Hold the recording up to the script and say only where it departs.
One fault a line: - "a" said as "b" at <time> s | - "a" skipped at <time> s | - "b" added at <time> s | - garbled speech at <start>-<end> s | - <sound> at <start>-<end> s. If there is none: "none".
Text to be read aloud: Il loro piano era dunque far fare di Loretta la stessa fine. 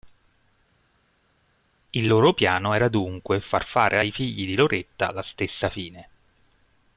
- "ai figli" added at 4.0 s